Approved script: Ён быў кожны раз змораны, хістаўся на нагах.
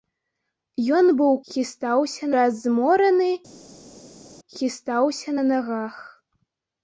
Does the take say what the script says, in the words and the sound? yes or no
no